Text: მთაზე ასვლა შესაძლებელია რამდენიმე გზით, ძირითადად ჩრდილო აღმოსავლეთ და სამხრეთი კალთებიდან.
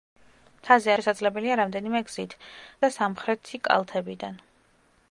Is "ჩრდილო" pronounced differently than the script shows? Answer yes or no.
yes